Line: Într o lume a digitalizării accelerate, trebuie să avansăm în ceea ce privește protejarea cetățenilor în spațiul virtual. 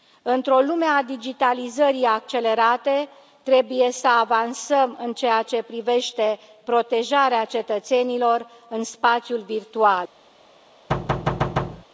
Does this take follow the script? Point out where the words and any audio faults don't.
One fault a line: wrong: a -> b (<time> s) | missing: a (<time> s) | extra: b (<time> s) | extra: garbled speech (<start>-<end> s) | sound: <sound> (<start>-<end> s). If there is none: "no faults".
sound: thud (10.9-11.8 s)